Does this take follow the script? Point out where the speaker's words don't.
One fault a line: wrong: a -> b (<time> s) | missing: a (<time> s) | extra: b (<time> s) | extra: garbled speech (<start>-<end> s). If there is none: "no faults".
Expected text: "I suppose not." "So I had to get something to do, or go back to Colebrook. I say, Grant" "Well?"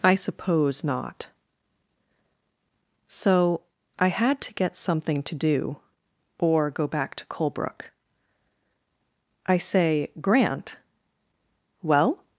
no faults